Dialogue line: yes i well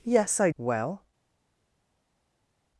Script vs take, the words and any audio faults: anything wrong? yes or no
no